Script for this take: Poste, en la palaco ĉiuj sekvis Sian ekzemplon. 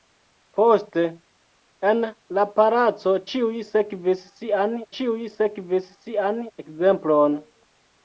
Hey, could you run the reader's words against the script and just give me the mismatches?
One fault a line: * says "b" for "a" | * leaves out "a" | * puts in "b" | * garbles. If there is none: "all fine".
* puts in "ĉiuj sekvis Sian"